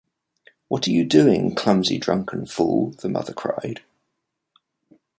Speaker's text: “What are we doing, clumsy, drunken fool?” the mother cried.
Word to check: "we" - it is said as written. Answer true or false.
false